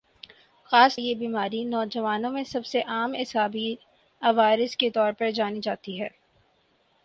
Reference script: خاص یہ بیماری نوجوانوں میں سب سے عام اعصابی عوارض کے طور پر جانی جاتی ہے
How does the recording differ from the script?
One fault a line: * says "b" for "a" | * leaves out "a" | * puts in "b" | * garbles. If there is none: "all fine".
all fine